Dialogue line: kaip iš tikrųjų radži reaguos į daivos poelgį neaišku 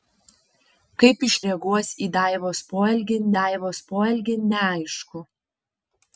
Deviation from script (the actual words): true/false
true